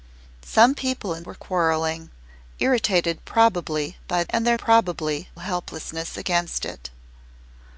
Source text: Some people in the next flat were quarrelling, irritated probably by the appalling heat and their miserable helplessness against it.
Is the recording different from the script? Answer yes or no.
yes